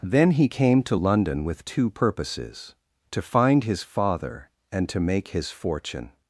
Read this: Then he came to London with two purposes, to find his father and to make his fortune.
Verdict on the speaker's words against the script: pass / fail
pass